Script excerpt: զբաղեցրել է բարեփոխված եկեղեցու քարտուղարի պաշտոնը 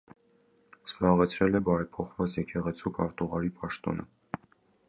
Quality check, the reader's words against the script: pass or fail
pass